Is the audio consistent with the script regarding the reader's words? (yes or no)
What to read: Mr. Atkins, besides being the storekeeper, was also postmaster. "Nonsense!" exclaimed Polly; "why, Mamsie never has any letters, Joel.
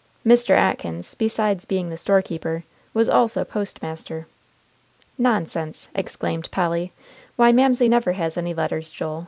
yes